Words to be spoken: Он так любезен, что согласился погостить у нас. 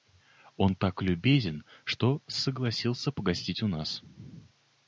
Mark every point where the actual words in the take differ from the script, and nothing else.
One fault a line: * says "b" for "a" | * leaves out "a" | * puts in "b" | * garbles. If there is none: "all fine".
all fine